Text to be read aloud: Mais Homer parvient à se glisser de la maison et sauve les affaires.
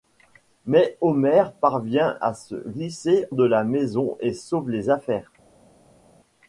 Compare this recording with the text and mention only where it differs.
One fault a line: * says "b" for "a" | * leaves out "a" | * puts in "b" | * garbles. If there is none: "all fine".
all fine